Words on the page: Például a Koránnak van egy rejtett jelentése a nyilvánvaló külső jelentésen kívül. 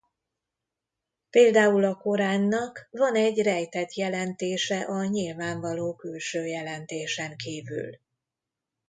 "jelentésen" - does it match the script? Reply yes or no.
yes